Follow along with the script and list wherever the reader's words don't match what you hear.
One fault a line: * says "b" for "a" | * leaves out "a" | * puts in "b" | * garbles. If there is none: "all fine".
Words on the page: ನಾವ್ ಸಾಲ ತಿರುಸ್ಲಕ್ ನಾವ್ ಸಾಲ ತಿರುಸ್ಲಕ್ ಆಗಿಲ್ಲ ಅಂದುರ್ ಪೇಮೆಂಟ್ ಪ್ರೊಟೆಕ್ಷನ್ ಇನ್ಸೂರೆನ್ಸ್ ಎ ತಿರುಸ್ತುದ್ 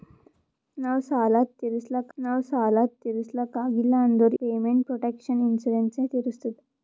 all fine